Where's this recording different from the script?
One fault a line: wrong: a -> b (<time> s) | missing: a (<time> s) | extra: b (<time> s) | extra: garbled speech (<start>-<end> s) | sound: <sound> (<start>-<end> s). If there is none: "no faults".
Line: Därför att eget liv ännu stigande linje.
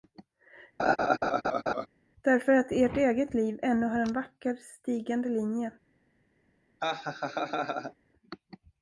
sound: laugh (0.8-1.9 s)
extra: ert (2.7 s)
extra: har en vacker (3.9 s)
sound: laugh (6.8-7.9 s)